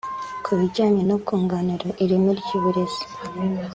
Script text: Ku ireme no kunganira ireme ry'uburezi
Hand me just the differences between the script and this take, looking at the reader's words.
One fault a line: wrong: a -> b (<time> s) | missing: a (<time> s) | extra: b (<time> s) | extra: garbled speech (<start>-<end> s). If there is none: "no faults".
wrong: ireme -> bijyanye (0.6 s)